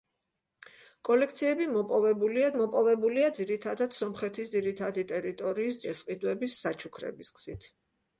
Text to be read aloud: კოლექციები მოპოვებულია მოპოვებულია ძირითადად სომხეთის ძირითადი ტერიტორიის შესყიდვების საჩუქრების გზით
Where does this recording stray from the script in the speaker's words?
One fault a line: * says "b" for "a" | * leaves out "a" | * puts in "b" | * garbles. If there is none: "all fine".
all fine